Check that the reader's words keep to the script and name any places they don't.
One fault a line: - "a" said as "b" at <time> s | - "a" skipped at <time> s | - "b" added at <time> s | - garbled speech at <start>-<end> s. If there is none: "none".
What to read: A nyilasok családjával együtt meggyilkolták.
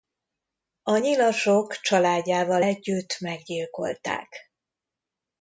none